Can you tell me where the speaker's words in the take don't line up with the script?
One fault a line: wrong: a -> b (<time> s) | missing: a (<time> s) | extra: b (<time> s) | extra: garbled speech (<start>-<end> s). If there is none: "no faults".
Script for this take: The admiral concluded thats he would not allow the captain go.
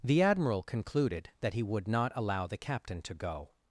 wrong: thats -> that (1.4 s)
extra: to (3.0 s)